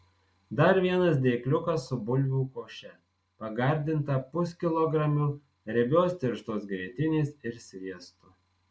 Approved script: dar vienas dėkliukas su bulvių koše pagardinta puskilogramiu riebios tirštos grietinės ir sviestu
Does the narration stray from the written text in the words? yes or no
no